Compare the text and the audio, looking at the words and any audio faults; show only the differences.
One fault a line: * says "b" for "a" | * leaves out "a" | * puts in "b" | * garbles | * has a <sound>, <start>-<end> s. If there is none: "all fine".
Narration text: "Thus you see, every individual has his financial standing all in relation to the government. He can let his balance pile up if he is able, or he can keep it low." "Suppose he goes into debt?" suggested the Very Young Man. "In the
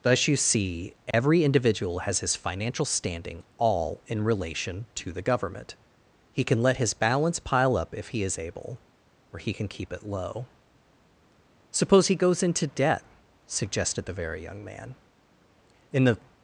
* has a dropout, 1.1-1.1 s